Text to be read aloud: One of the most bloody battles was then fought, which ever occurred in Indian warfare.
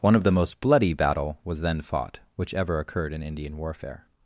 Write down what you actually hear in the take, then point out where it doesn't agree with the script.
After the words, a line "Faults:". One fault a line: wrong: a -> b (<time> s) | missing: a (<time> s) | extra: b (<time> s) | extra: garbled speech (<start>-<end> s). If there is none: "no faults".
One of the most bloody battle was then fought, which ever occurred in Indian warfare.
Faults:
wrong: battles -> battle (0.9 s)